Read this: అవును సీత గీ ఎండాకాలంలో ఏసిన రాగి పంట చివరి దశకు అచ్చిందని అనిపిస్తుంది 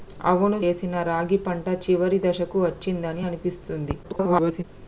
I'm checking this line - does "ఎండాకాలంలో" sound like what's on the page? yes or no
no